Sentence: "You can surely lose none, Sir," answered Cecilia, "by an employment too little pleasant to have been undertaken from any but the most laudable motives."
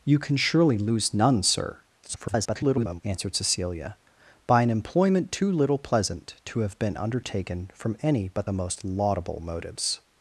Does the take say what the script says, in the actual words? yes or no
no